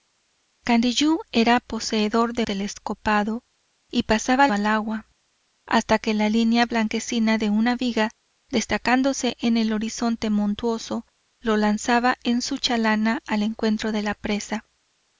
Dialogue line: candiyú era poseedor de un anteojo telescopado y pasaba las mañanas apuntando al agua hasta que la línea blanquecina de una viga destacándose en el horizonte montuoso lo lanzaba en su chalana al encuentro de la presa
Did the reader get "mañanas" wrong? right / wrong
wrong